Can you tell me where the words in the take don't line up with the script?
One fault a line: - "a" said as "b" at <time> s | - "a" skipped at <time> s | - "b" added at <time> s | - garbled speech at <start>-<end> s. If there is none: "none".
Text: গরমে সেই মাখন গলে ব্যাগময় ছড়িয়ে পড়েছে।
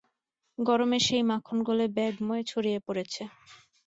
none